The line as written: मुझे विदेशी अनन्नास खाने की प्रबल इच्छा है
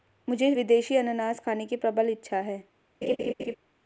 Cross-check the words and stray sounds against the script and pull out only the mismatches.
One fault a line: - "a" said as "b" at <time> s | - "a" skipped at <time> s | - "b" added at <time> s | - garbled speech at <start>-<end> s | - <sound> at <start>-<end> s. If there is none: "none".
- laugh at 3.0-3.6 s